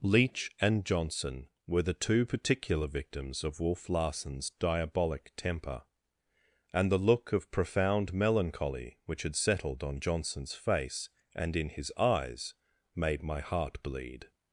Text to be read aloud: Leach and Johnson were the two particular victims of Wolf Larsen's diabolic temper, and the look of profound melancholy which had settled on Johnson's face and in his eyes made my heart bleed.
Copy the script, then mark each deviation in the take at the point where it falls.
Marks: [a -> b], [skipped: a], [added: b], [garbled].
Leach and Johnson were the two particular victims of Wolf Larsen's diabolic temper, and the look of profound melancholy which had settled on Johnson's face and in his eyes made my heart bleed.